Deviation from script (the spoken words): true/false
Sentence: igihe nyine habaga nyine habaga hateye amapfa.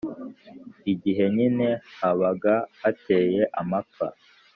true